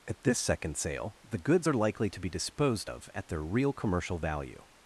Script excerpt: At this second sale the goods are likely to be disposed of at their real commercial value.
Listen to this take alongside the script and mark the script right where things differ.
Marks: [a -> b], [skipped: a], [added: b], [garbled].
At this second sale the goods are likely to be disposed of at their real commercial value.